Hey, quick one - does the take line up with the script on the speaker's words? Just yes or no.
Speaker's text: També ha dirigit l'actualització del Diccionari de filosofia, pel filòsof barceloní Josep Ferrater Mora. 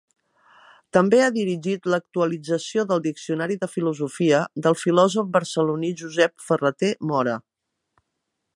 no